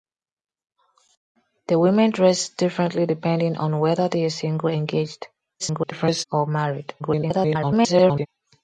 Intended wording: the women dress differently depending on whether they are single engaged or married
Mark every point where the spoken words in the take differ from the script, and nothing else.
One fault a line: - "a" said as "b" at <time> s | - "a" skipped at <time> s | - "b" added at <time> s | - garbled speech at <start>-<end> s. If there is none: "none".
- garbled speech at 5.6-6.2 s
- garbled speech at 7.0-8.3 s